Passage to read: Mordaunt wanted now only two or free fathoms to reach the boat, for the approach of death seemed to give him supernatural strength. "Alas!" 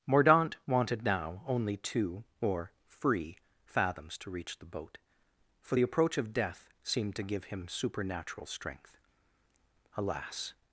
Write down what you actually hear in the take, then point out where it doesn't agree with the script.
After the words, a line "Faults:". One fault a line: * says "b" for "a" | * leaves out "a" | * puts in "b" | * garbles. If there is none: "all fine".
Mordaunt wanted now only two or free fathoms to reach the boat, for the approach of death seemed to give him supernatural strength. "Alas!"
Faults:
all fine